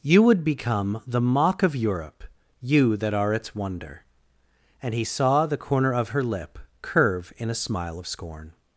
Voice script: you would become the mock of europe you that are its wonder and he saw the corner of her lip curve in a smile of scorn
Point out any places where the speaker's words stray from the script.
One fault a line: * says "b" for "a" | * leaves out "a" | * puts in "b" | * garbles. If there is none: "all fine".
all fine